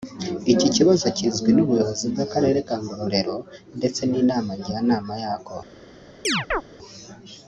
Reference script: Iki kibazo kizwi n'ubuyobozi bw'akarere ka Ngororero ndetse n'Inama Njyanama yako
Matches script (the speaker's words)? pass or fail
pass